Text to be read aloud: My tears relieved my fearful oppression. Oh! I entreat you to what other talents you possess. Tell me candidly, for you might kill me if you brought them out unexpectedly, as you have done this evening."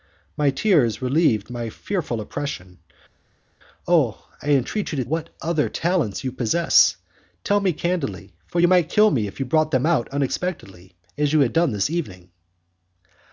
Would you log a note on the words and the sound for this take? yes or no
no